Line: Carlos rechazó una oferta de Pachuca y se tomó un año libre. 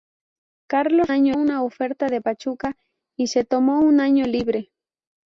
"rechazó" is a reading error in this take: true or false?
true